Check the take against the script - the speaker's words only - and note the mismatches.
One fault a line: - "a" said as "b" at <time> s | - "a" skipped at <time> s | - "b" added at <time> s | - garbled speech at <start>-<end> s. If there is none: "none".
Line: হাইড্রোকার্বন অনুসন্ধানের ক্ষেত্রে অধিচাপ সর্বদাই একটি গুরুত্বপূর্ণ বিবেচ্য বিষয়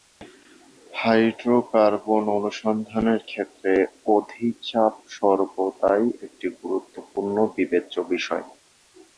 none